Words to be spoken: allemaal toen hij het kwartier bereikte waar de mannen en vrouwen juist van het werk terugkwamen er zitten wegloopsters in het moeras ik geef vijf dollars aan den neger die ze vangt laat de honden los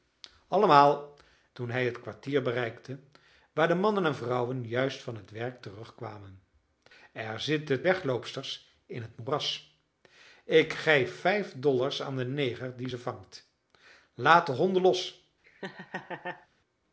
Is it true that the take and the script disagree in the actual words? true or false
false